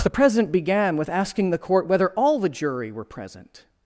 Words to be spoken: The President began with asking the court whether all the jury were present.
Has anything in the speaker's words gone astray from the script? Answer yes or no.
no